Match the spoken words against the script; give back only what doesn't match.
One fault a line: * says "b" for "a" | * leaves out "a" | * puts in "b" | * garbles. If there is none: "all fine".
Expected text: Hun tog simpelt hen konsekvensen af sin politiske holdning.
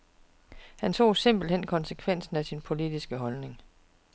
* says "Han" for "Hun"